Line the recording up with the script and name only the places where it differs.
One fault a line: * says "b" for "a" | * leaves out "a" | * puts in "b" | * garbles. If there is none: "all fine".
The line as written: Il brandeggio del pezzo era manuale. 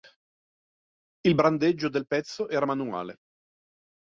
all fine